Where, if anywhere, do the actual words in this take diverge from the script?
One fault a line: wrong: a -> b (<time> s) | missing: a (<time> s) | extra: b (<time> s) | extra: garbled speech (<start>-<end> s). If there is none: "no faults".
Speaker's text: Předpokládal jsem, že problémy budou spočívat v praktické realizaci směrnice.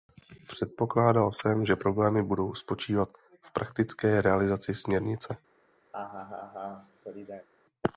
no faults